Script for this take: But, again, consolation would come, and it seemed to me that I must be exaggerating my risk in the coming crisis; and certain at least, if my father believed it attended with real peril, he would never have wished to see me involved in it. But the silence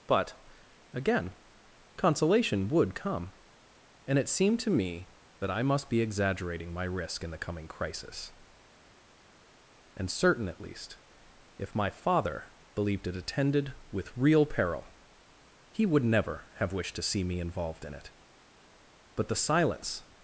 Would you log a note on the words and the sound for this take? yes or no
no